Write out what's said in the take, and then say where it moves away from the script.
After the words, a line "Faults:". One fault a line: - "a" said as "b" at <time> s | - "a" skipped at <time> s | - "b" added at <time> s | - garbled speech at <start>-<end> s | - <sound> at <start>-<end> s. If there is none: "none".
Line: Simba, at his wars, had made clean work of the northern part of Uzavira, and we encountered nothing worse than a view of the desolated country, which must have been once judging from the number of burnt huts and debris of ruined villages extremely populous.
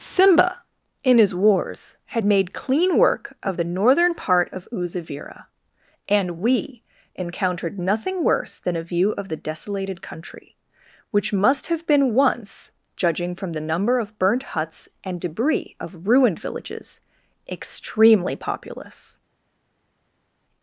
Simba, in his wars, had made clean work of the northern part of Uzavira, and we encountered nothing worse than a view of the desolated country, which must have been once judging from the number of burnt huts and debris of ruined villages extremely populous.
Faults:
- "at" said as "in" at 1.0 s